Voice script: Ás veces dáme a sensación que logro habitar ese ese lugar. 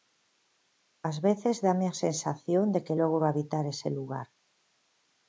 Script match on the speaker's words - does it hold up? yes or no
no